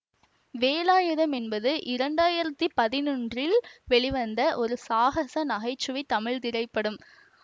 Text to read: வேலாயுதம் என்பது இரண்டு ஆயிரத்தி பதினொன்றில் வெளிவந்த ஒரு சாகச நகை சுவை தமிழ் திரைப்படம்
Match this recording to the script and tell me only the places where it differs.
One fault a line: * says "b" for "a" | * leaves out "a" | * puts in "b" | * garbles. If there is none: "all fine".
all fine